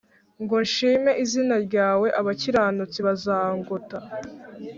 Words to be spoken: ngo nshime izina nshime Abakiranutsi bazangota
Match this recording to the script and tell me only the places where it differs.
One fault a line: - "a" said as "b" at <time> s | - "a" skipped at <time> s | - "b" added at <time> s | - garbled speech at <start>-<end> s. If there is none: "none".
- "nshime" said as "ryawe" at 1.7 s